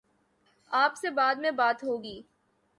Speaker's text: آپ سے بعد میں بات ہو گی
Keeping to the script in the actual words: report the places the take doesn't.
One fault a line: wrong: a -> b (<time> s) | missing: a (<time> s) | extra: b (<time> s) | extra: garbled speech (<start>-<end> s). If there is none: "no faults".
no faults